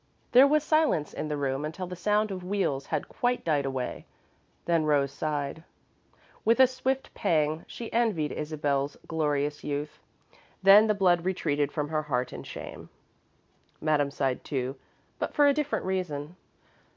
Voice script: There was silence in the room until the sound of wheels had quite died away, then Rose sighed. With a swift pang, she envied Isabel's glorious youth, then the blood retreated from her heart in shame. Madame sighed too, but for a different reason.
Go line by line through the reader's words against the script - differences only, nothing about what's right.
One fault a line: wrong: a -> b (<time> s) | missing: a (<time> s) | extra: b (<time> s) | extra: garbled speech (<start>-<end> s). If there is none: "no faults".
no faults